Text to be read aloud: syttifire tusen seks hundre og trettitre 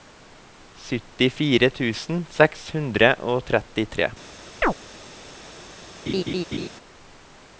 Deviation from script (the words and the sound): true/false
true